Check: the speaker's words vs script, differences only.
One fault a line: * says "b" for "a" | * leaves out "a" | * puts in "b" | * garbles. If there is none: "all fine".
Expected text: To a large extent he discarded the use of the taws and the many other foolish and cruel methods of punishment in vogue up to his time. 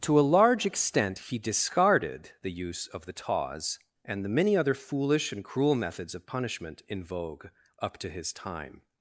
all fine